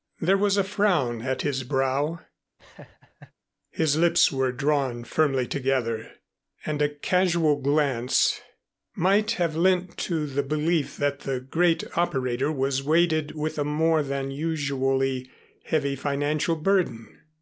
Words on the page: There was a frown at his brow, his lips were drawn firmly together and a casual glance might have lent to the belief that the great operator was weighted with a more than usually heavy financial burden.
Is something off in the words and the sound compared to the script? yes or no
yes